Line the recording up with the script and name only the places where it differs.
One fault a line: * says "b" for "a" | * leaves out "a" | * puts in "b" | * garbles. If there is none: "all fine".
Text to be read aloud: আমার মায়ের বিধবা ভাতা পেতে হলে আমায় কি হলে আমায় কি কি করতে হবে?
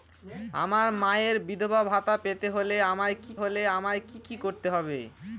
all fine